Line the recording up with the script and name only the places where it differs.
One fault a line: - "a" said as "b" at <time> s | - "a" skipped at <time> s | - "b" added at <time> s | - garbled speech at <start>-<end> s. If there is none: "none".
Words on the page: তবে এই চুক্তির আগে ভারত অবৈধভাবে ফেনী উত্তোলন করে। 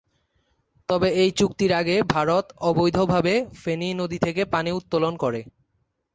- "নদী থেকে পানি" added at 3.9 s